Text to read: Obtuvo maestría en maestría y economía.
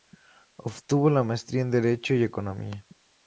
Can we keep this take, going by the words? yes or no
no